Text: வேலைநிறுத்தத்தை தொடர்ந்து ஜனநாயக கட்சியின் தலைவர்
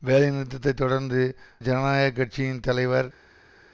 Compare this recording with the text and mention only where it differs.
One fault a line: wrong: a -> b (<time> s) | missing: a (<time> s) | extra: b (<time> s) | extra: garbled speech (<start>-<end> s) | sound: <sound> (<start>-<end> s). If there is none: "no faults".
no faults